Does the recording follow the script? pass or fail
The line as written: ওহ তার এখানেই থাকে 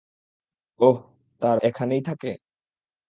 pass